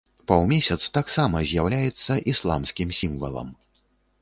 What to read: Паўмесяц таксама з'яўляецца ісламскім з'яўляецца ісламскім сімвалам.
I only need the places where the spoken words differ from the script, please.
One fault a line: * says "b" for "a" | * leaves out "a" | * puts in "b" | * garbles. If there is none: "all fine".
* leaves out "з'яўляецца ісламскім"